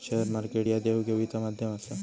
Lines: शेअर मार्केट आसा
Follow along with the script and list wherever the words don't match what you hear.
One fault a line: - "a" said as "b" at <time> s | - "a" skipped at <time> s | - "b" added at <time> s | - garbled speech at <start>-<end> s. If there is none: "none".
- "ह्या देवघेवीचा माध्यम" added at 0.7 s